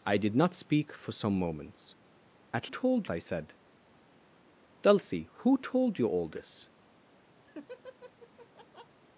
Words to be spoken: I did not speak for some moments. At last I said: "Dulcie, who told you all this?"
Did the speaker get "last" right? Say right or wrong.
wrong